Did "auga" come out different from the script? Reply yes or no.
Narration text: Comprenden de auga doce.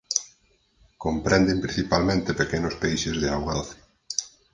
no